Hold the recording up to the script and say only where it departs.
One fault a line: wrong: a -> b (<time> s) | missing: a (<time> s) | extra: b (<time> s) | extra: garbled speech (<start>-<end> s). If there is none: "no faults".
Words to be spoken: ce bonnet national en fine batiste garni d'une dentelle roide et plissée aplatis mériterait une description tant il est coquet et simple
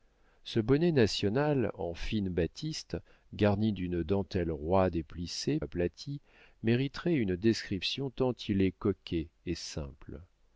no faults